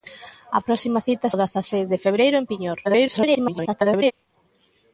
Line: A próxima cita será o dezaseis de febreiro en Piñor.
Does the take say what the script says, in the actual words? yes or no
no